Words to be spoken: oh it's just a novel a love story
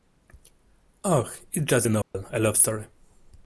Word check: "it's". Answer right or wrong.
right